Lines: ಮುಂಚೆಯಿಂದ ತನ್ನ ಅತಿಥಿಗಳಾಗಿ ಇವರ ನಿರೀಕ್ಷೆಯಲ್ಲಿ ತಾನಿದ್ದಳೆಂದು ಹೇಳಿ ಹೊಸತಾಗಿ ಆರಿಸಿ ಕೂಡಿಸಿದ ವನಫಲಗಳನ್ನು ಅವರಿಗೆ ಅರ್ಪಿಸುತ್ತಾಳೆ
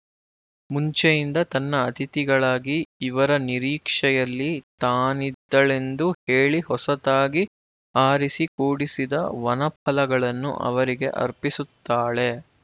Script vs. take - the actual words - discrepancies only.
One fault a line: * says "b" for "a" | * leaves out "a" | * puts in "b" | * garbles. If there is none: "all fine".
all fine